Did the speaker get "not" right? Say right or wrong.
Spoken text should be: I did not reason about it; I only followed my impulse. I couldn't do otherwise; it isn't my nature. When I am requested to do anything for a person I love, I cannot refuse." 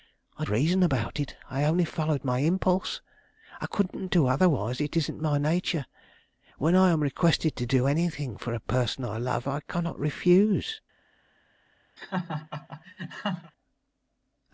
wrong